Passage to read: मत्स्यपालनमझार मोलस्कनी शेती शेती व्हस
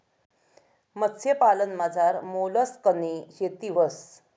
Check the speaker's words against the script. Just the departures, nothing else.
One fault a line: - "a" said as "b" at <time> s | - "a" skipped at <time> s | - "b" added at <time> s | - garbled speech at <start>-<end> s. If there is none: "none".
- "शेती" skipped at 3.7 s